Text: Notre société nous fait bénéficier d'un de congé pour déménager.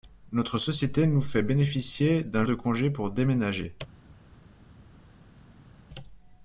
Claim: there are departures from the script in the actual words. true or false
false